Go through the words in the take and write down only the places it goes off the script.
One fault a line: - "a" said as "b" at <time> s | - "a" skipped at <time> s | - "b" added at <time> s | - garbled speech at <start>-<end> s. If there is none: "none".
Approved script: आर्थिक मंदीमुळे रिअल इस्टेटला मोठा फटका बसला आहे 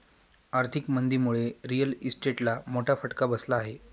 none